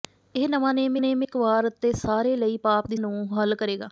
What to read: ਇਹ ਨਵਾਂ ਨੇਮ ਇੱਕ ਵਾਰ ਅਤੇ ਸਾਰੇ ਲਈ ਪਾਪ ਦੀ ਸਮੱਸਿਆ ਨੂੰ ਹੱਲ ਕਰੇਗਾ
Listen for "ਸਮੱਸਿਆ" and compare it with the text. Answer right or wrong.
wrong